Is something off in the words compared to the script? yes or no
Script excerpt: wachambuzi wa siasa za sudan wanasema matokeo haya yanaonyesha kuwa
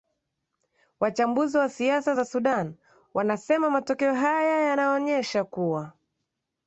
no